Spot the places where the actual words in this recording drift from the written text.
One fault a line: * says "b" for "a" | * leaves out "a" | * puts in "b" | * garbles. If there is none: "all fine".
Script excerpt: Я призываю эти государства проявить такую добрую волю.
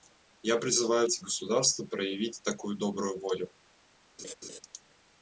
all fine